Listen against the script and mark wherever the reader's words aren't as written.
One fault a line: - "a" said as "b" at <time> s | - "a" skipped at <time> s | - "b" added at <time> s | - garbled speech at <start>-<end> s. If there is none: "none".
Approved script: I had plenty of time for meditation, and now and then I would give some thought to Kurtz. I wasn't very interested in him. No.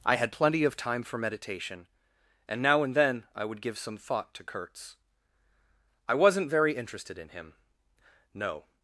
none